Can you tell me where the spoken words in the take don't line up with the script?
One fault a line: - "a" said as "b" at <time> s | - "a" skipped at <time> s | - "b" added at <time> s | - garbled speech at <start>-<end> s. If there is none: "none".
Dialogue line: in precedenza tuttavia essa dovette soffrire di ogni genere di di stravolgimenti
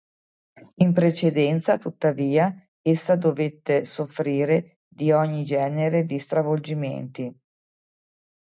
- "di" skipped at 6.2 s